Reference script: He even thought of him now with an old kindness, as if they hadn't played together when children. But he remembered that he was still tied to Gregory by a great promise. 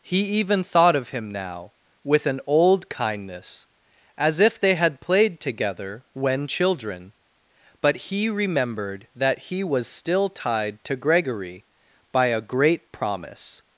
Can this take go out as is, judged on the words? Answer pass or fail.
fail